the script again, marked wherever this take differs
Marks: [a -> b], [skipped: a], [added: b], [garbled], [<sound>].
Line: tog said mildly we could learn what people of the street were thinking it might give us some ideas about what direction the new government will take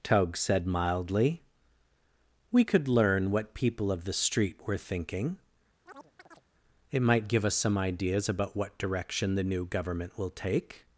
tog said mildly we could learn what people of the street were thinking [chirp] it might give us some ideas about what direction the new government will take